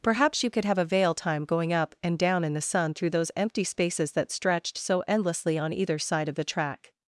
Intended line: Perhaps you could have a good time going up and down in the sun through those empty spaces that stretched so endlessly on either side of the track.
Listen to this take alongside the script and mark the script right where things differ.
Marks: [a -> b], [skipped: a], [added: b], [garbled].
Perhaps you could have a [good -> veil] time going up and down in the sun through those empty spaces that stretched so endlessly on either side of the track.